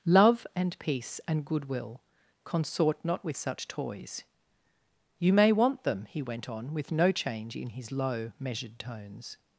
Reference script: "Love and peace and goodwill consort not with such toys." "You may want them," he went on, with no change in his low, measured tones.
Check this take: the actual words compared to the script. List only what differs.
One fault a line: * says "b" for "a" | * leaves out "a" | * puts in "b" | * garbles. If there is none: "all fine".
all fine